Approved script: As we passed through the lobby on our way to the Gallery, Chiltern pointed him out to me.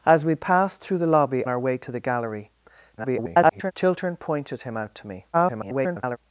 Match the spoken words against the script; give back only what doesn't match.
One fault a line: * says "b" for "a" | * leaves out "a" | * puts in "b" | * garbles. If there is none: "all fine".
* leaves out "on"
* garbles
* garbles